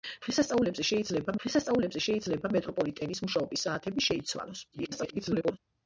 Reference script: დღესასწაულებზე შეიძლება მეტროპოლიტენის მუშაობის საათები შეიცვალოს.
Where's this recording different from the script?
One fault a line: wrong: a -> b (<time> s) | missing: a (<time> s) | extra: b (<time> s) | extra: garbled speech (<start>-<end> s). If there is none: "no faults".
extra: დღესასწაულებზე შეიძლება (1.4 s)
extra: garbled speech (4.7-5.6 s)